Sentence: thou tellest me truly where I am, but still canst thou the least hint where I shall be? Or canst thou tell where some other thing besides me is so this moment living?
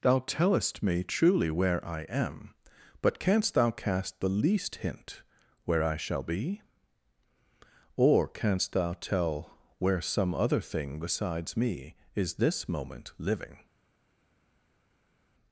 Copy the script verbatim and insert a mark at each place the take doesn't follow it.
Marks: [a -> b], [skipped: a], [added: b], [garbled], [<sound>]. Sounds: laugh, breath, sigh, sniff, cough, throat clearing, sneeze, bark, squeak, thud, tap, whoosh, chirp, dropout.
thou tellest me truly where I am, but [skipped: still] canst thou [added: cast] the least hint where I shall be? Or canst thou tell where some other thing besides me is [skipped: so] this moment living?